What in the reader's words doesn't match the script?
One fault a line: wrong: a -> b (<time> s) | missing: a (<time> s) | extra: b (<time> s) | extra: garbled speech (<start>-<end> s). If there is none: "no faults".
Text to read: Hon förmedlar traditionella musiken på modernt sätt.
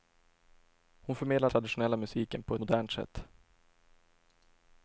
no faults